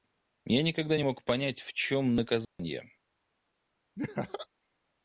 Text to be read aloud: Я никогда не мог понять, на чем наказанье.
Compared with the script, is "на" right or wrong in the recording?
wrong